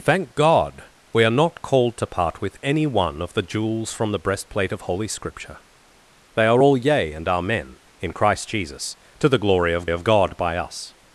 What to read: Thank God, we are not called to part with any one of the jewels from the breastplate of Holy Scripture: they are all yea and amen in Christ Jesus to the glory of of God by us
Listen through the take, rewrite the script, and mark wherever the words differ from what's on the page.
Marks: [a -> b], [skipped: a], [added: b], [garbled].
Thank God, we are not called to part with any one of the jewels from the breastplate of Holy Scripture: they are all yea and amen in Christ Jesus to the glory of of God by us